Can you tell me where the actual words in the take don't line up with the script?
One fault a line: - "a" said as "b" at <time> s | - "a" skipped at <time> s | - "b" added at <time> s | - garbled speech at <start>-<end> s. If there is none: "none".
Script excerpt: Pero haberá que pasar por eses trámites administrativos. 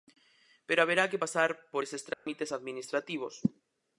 none